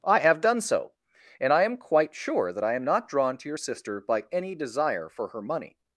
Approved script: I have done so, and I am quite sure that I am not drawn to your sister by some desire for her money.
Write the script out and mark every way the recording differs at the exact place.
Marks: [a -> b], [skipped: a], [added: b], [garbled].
I have done so, and I am quite sure that I am not drawn to your sister by [some -> any] desire for her money.